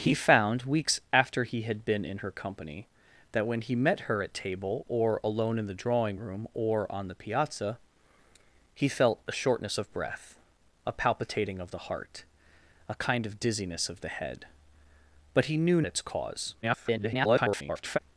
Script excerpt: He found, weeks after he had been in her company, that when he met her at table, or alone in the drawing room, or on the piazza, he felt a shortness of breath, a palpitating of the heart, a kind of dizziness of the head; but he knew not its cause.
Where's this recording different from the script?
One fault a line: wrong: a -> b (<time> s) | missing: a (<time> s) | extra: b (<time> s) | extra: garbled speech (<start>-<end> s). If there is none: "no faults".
missing: not (15.8 s)
extra: garbled speech (16.6-18.0 s)